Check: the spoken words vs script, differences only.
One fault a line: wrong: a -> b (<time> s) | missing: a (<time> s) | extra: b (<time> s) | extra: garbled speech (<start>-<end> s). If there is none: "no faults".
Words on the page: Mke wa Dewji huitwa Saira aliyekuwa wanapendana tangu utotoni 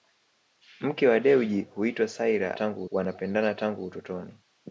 wrong: aliyekuwa -> tangu (2.5 s)